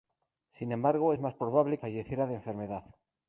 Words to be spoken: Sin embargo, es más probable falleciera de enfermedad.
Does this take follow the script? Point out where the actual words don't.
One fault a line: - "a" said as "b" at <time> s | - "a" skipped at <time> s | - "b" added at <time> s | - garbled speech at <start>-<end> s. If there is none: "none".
none